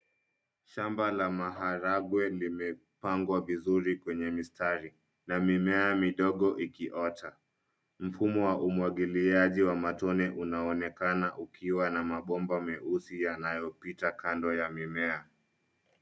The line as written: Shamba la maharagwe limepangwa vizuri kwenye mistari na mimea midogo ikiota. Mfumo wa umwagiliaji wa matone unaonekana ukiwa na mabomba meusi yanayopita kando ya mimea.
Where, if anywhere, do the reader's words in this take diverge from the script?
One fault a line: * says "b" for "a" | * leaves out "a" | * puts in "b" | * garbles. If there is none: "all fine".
all fine